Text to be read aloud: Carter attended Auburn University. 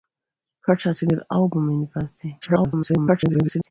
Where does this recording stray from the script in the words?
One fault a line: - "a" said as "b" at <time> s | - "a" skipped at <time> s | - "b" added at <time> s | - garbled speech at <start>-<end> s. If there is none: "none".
- garbled speech at 2.4-3.7 s